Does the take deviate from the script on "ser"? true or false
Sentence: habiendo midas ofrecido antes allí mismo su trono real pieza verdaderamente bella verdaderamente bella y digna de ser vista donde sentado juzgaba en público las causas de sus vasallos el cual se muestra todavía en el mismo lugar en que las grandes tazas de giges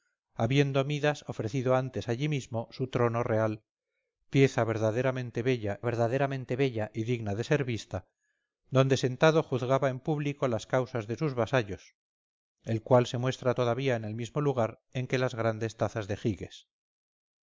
false